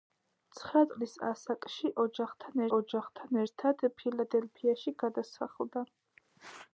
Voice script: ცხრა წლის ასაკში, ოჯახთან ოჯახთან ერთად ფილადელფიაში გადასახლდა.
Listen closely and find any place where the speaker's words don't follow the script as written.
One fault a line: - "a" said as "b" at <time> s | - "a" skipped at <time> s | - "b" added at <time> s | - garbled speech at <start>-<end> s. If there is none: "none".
none